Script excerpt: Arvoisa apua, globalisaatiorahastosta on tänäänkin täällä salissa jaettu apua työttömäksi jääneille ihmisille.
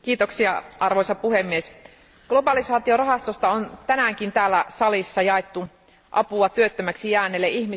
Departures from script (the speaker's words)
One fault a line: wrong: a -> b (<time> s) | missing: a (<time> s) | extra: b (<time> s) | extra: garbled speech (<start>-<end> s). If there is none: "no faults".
wrong: apua -> puhemies (1.1 s)